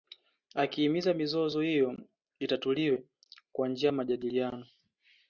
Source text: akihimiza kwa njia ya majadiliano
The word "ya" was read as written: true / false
true